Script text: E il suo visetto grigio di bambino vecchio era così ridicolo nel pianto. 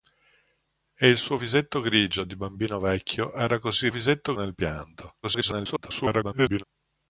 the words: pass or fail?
fail